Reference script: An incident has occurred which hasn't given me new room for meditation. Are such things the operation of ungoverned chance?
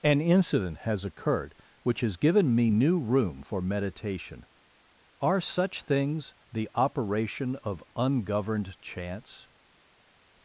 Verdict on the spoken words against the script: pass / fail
fail